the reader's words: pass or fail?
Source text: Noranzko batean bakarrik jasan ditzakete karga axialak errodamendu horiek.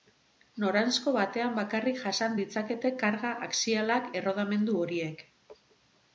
pass